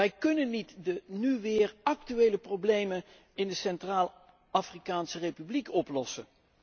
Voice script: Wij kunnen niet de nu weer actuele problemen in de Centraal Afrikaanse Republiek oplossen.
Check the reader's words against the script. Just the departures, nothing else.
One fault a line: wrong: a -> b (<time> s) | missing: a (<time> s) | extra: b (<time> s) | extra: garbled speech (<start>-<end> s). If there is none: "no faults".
no faults